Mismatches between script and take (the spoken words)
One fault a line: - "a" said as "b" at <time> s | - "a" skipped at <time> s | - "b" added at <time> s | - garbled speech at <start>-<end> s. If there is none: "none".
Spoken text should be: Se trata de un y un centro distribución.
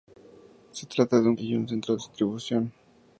none